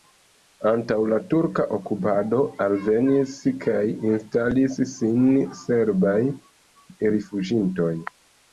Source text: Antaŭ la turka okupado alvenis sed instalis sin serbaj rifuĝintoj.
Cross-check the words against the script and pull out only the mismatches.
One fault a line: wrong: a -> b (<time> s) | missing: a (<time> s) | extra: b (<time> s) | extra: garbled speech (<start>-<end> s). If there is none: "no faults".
wrong: sed -> kaj (3.7 s)